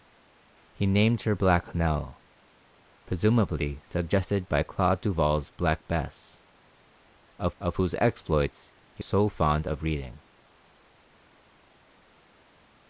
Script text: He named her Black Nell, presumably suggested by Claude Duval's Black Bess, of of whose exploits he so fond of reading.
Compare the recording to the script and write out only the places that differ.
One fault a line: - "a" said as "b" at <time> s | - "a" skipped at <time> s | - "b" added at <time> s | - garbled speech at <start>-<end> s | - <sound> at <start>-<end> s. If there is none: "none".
none